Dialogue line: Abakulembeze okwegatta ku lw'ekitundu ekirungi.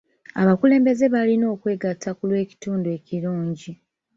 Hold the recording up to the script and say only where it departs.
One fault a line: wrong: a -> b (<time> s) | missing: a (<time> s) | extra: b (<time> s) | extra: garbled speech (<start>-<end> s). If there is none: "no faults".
extra: balina (1.1 s)